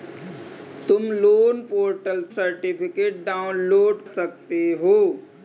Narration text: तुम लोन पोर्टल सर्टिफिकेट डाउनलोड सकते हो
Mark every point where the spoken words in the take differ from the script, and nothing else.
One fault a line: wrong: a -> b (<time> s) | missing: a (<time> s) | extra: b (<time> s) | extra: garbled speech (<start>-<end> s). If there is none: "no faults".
no faults